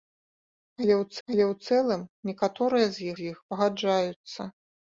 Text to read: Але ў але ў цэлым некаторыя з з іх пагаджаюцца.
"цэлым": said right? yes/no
yes